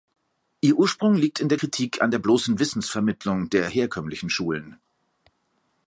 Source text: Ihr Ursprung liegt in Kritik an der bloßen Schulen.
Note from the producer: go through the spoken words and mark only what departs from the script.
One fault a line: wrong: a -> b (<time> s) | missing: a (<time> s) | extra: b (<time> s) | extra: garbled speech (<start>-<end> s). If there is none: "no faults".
extra: der (1.5 s)
extra: Wissensvermittlung der herkömmlichen (2.6 s)